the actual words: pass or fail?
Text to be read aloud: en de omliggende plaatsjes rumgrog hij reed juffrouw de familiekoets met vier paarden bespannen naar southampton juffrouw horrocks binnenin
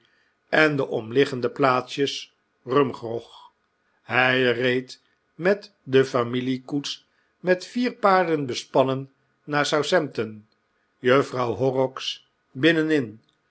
fail